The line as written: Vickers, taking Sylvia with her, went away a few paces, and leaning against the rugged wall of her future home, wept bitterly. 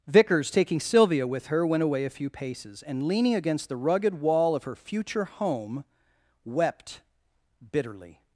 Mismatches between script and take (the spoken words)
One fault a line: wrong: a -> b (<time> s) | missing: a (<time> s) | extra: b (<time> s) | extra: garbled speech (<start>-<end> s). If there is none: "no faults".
no faults